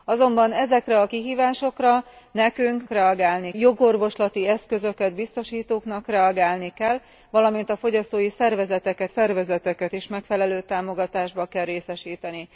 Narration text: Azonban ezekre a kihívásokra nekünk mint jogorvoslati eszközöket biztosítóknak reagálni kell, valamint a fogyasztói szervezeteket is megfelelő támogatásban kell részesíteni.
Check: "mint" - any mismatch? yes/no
yes